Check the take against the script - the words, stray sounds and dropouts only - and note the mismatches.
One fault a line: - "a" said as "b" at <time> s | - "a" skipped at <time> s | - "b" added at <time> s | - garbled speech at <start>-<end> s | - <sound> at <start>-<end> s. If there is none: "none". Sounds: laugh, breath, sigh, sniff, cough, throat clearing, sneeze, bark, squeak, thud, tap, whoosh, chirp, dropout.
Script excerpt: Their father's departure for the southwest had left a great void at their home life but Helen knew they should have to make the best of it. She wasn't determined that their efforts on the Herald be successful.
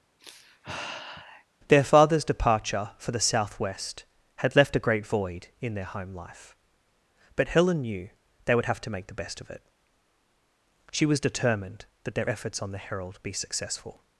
- sigh at 0.2-1.5 s
- "at" said as "in" at 5.6 s
- "should" said as "would" at 8.5 s
- "wasn't" said as "was" at 11.1 s